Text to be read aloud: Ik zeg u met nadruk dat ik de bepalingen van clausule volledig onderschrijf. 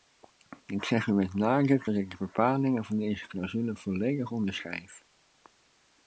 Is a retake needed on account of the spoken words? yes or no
yes